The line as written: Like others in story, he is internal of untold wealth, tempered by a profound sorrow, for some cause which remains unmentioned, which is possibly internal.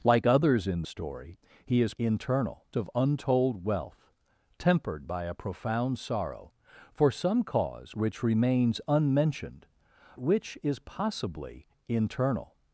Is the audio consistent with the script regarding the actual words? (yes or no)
yes